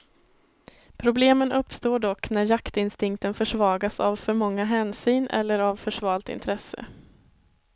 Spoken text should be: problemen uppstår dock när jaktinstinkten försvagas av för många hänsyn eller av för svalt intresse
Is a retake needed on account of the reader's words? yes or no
no